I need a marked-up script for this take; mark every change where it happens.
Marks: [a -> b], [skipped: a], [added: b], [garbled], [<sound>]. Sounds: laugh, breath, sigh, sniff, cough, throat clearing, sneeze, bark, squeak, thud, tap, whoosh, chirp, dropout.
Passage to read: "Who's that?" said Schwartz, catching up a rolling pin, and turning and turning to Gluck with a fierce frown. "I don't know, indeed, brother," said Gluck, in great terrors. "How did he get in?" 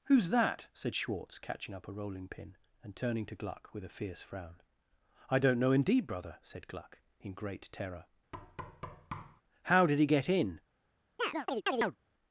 "Who's that?" said Schwartz, catching up a rolling pin, and turning [skipped: and turning] to Gluck with a fierce frown. "I don't know, indeed, brother," said Gluck, in great [terrors. -> terror] [thud] "How did he get in?" [chirp]